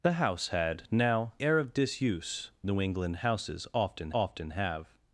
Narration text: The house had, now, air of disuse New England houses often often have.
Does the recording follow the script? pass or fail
pass